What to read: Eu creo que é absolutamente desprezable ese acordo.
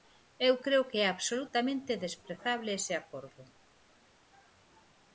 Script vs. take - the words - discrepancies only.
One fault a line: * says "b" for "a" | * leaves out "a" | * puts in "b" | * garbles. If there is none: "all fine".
all fine